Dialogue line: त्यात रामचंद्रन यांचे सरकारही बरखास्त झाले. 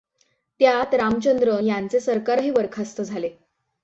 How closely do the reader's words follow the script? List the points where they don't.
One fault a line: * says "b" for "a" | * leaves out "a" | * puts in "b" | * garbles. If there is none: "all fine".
all fine